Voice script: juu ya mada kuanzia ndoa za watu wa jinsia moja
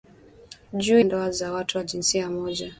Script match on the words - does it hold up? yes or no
no